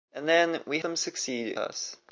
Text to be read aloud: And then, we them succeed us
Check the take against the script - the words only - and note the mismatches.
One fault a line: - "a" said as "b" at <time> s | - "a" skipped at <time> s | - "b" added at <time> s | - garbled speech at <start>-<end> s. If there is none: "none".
none